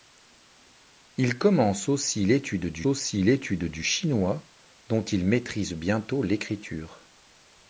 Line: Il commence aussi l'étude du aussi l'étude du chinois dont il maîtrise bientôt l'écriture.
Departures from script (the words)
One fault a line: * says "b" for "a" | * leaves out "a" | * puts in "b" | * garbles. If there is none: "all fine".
all fine